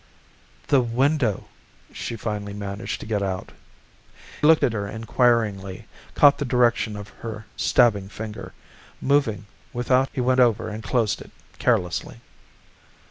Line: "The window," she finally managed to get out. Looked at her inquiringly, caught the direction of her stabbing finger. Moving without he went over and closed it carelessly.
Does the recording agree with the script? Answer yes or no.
yes